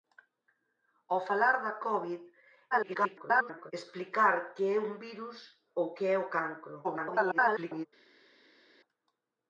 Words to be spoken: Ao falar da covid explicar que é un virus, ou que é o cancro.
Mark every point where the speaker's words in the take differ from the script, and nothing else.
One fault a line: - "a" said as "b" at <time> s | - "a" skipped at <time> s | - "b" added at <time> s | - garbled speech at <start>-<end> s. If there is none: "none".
- garbled speech at 2.7-3.7 s
- garbled speech at 6.8-7.9 s